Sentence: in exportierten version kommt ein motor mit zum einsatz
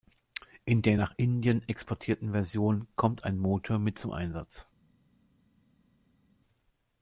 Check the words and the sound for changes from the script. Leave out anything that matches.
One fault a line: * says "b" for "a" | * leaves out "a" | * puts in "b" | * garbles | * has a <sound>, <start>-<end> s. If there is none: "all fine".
* puts in "der nach indien"